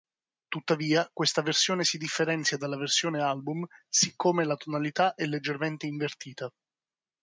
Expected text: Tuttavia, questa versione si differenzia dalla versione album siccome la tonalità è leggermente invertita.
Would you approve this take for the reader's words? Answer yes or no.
yes